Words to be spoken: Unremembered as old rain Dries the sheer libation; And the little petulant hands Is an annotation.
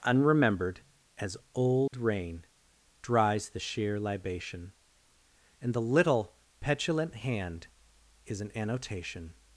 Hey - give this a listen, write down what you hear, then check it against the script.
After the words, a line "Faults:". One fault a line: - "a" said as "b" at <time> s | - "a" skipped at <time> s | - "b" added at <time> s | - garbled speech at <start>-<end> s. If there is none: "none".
Unremembered as old rain Dries the sheer libation; And the little petulant hand Is an annotation.
Faults:
- "hands" said as "hand" at 7.2 s